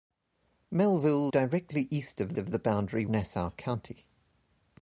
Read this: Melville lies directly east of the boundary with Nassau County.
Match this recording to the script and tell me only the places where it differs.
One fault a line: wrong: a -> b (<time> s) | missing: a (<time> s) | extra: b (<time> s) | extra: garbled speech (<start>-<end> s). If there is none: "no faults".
missing: lies (1.3 s)
extra: of (2.4 s)
missing: with (3.0 s)